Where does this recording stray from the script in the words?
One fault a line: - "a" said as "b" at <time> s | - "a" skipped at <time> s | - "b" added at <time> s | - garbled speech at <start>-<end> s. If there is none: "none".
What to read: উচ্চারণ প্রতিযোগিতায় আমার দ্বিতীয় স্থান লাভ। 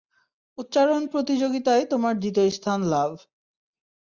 - "আমার" said as "তোমার" at 1.9 s